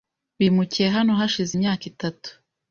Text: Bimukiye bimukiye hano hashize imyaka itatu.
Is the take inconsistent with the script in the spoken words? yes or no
yes